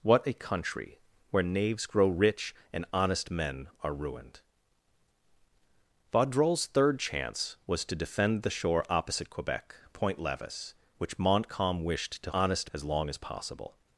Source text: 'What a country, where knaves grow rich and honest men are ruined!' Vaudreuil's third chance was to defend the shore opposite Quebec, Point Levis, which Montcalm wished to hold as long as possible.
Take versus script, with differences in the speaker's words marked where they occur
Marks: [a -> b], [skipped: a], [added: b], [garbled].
'What a country, where knaves grow rich and honest men are ruined!' Vaudreuil's third chance was to defend the shore opposite Quebec, Point Levis, which Montcalm wished to [hold -> honest] as long as possible.